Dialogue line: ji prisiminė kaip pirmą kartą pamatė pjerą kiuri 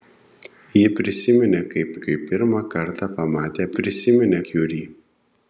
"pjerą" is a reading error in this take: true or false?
true